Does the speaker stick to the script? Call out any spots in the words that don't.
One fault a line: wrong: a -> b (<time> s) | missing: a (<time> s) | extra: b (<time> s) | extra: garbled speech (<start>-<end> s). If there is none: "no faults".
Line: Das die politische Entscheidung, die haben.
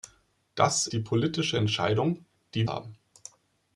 no faults